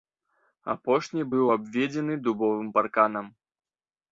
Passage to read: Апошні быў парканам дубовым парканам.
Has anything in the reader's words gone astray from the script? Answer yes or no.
yes